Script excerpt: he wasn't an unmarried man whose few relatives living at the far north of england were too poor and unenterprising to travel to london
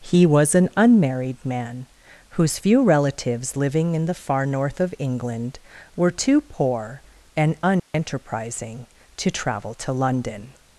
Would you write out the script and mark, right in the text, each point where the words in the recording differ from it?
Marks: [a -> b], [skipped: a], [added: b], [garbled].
he [wasn't -> was] an unmarried man whose few relatives living [at -> in] the far north of england were too poor and unenterprising to travel to london